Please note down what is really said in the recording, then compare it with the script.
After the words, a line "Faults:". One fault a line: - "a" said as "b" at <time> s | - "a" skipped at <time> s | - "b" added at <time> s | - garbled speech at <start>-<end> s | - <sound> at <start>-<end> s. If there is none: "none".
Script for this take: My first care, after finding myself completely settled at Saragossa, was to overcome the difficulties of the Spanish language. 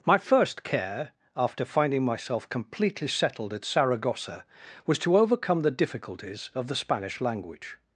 My first care, after finding myself completely settled at Saragossa, was to overcome the difficulties of the Spanish language.
Faults:
none